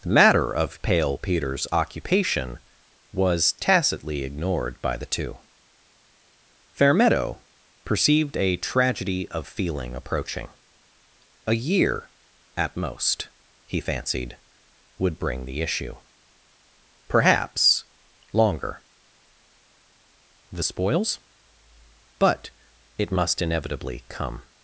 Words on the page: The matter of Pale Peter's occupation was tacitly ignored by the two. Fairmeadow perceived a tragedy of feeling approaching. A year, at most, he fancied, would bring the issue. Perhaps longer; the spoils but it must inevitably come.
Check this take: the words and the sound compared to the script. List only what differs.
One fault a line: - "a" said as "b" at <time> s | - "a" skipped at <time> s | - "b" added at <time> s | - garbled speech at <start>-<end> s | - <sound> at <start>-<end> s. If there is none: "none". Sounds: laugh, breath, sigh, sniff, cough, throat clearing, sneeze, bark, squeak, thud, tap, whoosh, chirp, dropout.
none